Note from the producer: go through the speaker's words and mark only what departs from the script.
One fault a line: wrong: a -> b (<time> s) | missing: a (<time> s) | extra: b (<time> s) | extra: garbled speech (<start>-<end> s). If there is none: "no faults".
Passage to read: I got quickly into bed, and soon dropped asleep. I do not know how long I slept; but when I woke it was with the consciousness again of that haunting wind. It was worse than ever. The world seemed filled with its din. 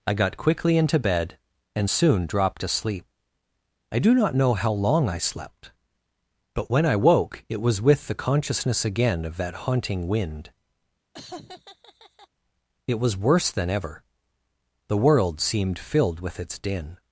no faults